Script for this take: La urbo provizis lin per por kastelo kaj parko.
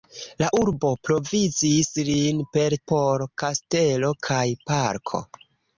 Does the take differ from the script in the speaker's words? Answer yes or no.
no